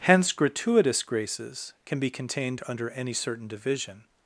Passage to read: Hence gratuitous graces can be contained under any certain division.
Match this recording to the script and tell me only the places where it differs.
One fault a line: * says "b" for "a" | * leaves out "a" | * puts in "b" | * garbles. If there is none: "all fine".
all fine